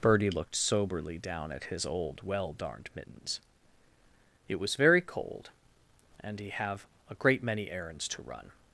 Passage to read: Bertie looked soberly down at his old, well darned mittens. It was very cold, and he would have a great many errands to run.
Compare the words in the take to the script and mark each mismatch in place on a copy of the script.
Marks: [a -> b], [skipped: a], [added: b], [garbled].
Bertie looked soberly down at his old, well darned mittens. It was very cold, and he [skipped: would] have a great many errands to run.